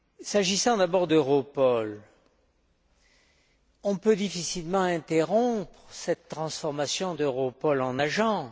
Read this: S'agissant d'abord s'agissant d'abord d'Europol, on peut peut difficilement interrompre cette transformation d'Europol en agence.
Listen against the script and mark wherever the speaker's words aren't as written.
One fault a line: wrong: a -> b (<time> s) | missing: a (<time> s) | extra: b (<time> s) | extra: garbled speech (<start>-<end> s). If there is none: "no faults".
missing: s'agissant d'abord (1.1 s)
missing: peut (4.2 s)